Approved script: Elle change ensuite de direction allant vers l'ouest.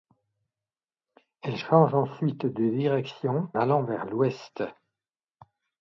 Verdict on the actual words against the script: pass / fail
pass